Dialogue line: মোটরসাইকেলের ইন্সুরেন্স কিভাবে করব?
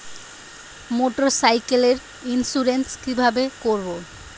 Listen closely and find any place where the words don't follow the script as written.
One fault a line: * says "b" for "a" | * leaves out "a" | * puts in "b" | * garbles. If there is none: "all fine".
all fine